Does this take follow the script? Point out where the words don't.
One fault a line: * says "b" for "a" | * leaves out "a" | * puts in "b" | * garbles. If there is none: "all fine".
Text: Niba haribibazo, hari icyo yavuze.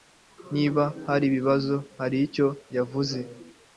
all fine